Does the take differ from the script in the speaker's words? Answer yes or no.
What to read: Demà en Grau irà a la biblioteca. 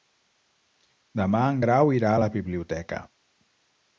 no